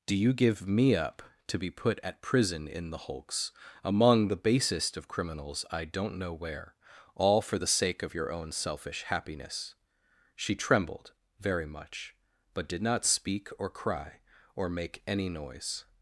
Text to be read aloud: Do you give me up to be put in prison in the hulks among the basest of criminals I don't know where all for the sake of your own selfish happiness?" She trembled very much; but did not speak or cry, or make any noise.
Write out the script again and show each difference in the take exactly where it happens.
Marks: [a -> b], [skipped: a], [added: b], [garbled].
Do you give me up to be put [in -> at] prison in the hulks among the basest of criminals I don't know where all for the sake of your own selfish happiness?" She trembled very much; but did not speak or cry, or make any noise.